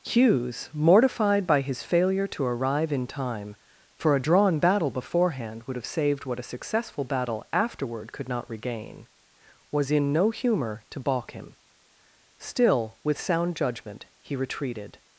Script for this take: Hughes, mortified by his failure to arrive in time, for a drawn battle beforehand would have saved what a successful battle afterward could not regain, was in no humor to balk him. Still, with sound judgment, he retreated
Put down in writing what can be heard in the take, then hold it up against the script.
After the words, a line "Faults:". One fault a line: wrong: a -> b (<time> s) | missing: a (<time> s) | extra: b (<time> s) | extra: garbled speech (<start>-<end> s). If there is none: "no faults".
Hughes, mortified by his failure to arrive in time, for a drawn battle beforehand would have saved what a successful battle afterward could not regain, was in no humor to balk him. Still, with sound judgment, he retreated
Faults:
no faults